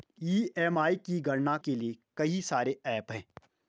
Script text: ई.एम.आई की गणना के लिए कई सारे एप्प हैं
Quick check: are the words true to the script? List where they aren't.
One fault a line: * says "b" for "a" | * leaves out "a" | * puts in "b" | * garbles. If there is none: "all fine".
all fine